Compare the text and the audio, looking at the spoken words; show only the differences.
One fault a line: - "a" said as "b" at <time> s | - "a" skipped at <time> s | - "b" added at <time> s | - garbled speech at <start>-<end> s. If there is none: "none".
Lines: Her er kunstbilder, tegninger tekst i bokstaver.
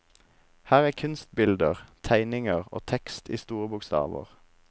- "og" added at 2.6 s
- "store" added at 3.4 s